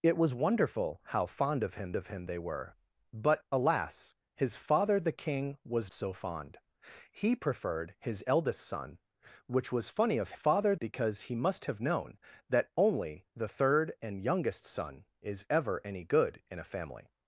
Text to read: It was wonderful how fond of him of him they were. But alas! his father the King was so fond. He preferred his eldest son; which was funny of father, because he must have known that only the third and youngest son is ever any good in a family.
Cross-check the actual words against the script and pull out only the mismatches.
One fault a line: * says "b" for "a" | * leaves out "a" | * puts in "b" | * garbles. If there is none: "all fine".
all fine